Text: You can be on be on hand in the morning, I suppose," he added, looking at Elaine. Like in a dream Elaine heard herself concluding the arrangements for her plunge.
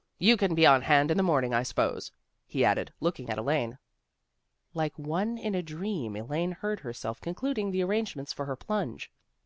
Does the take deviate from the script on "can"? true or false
false